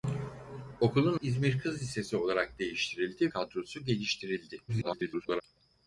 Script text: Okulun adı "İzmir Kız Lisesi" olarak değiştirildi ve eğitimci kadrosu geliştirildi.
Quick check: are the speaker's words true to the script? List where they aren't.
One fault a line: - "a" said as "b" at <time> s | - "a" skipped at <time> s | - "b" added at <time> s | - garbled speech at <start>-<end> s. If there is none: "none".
- "adı" skipped at 1.2 s
- "ve eğitimci" skipped at 3.3 s
- garbled speech at 4.7-5.4 s